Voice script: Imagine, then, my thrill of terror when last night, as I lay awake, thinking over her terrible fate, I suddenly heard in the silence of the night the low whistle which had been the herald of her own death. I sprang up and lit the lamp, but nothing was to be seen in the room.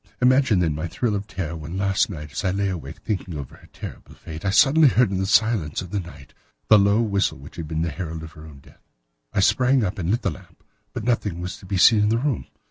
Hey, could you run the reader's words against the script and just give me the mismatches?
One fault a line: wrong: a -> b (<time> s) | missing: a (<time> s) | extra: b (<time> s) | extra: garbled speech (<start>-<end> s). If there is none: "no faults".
no faults